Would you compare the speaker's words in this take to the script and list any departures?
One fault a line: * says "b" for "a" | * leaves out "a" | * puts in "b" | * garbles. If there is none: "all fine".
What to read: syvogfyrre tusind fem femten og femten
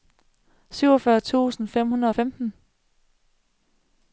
* says "hundrede" for "femten"